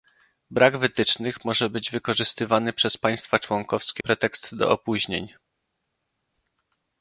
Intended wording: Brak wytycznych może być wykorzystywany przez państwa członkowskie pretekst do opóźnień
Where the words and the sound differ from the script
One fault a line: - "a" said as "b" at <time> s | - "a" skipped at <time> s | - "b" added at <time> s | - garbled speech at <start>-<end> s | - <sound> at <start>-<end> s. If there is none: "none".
none